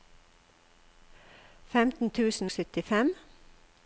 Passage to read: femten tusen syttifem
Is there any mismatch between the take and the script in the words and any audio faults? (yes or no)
no